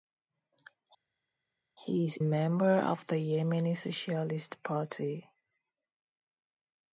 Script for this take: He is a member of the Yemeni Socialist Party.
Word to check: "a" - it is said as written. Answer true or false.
false